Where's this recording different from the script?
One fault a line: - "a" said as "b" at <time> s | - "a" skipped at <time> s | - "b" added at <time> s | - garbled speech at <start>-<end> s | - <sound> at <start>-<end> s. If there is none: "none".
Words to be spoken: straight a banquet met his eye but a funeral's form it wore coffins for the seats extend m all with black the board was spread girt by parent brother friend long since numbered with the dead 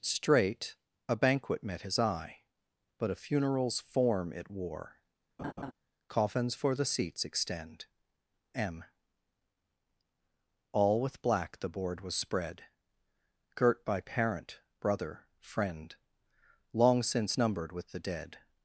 - laugh at 5.4-5.7 s